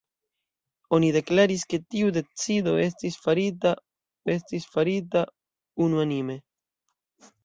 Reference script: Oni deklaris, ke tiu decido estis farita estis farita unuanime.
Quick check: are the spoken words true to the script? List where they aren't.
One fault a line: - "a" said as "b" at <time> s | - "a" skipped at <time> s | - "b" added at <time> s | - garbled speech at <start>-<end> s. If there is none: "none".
none